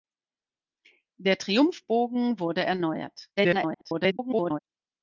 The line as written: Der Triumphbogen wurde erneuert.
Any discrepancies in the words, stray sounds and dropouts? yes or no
yes